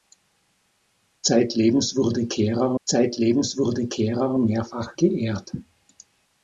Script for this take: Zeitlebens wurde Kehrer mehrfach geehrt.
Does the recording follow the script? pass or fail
fail